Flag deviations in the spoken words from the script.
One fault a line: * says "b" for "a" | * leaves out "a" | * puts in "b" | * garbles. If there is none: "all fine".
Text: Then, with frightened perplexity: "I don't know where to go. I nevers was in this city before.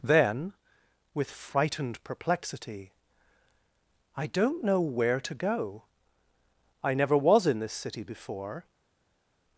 * says "never" for "nevers"